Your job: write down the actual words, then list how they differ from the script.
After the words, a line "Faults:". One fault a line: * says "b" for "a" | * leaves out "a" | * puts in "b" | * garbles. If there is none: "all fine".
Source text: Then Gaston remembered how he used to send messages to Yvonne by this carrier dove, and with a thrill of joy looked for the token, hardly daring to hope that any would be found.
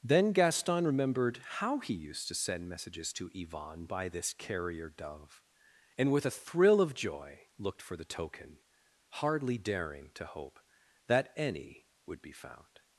Then Gaston remembered how he used to send messages to Yvonne by this carrier dove, and with a thrill of joy looked for the token, hardly daring to hope that any would be found.
Faults:
all fine